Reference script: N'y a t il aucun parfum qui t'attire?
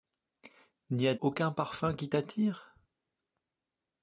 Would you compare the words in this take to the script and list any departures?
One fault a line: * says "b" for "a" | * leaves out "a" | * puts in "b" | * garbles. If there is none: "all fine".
* leaves out "t il"